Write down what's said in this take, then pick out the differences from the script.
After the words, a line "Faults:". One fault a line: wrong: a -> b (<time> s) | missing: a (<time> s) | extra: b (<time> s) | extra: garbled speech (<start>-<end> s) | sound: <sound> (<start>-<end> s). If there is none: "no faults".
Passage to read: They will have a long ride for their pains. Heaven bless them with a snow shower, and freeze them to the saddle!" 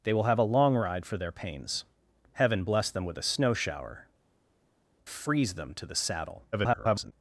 They will have a long ride for their pains. Heaven bless them with a snow shower, freeze them to the saddle!" [garbled]
Faults:
missing: and (4.1 s)
extra: garbled speech (6.5-7.1 s)